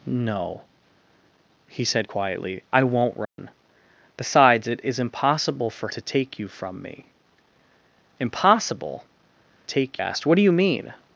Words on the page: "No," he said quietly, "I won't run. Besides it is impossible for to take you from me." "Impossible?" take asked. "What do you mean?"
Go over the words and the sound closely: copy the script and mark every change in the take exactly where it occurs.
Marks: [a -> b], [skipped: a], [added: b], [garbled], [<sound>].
"No," he said quietly, "I won't run. [dropout] Besides it is impossible for to take you from me." "Impossible?" take asked. "What do you mean?"